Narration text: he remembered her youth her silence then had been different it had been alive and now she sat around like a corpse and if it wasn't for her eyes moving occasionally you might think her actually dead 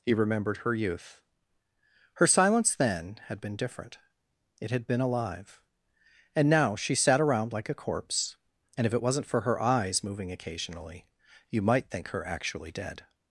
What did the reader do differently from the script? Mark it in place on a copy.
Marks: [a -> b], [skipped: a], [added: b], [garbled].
he remembered her youth her silence then had been different it had been alive and now she sat around like a corpse and if it wasn't for her eyes moving occasionally you might think her actually dead